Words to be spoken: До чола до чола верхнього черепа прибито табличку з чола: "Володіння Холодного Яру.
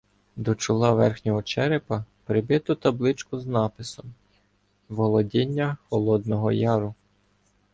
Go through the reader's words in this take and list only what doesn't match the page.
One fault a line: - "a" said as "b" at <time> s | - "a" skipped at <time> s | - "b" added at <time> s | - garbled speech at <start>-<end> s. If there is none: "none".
- "до чола" skipped at 0.9 s
- "чола" said as "написом" at 3.5 s